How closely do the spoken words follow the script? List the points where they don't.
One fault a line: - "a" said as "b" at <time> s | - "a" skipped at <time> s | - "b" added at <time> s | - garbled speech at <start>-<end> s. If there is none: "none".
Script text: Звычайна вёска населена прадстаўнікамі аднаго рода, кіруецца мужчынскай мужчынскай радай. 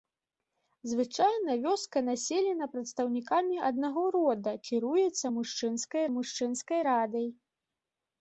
none